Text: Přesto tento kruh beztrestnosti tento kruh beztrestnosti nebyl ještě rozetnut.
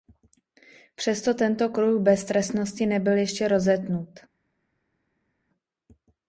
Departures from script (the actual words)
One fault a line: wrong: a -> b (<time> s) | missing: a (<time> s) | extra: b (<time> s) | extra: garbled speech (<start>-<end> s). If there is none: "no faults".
missing: tento kruh beztrestnosti (2.9 s)